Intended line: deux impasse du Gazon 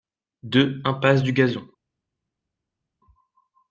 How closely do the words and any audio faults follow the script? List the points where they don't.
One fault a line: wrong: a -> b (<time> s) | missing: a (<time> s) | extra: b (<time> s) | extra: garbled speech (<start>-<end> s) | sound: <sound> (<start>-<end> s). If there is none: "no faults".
no faults